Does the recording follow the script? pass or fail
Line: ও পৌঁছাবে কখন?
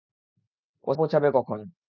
pass